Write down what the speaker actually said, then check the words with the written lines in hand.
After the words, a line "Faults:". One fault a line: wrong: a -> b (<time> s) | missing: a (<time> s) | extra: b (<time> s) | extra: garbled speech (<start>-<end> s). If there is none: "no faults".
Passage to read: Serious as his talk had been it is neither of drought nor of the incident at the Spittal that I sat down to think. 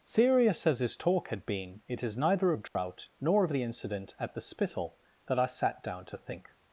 Serious as his talk had been it is neither of drought nor of the incident at the Spittal that I sat down to think.
Faults:
no faults